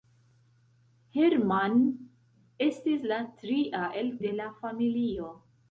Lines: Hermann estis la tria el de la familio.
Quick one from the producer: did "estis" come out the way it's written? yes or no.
yes